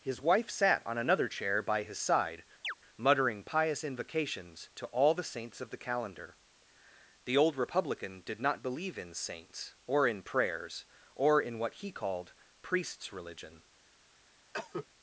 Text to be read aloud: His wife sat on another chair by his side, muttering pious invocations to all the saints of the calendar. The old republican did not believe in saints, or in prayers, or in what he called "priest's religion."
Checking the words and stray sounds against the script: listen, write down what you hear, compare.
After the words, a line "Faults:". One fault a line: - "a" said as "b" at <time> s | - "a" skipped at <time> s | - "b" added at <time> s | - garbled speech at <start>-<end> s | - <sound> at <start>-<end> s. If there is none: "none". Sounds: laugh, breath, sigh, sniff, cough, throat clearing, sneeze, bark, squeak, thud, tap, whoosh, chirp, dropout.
His wife sat on another chair by his side, muttering pious invocations to all the saints of the calendar. The old republican did not believe in saints, or in prayers, or in what he called "priest's religion."
Faults:
- chirp at 2.6-2.7 s
- cough at 14.5-14.9 s